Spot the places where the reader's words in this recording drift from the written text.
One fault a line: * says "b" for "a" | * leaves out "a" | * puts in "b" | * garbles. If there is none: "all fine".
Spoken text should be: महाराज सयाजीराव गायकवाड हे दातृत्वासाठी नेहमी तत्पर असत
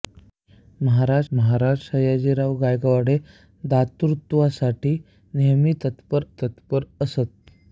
* puts in "महाराज"
* puts in "तत्पर"